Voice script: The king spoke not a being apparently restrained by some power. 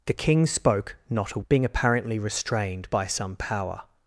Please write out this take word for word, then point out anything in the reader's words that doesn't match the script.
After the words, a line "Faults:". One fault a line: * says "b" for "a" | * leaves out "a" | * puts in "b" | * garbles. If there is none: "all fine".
The king spoke not a being apparently restrained by some power.
Faults:
all fine